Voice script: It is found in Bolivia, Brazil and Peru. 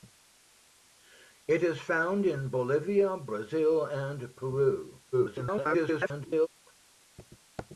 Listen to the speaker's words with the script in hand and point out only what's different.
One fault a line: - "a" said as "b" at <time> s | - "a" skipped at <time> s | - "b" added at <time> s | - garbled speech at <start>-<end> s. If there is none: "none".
- garbled speech at 5.1-6.5 s